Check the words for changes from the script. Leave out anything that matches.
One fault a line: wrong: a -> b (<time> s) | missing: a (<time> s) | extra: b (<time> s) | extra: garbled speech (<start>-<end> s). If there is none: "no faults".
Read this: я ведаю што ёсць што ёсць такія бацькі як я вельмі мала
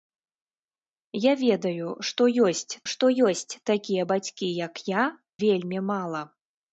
no faults